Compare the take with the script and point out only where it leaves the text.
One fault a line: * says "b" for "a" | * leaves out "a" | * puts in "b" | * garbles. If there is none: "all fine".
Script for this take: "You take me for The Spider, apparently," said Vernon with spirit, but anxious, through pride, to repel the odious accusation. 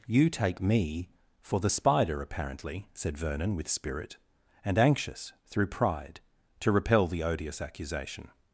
* says "and" for "but"